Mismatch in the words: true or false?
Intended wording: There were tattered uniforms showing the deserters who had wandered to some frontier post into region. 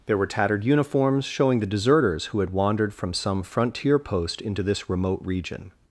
true